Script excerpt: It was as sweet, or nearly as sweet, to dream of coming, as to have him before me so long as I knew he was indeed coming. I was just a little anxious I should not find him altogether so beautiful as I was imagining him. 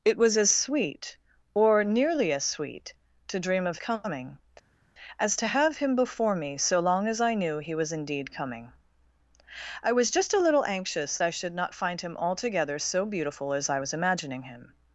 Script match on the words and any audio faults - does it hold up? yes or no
yes